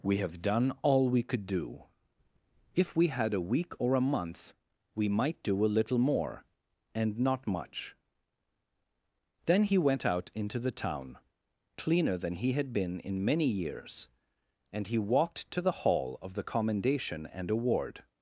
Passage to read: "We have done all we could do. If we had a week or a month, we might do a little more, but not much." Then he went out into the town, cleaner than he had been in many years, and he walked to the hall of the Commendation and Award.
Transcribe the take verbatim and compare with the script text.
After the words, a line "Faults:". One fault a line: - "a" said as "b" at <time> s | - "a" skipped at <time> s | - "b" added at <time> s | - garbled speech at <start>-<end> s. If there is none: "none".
"We have done all we could do. If we had a week or a month, we might do a little more, and not much." Then he went out into the town, cleaner than he had been in many years, and he walked to the hall of the Commendation and Award.
Faults:
- "but" said as "and" at 7.0 s